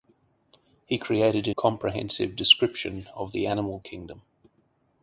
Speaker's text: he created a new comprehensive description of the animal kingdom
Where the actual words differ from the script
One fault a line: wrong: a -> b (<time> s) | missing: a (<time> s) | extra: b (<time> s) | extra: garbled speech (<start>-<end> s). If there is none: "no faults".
missing: new (1.5 s)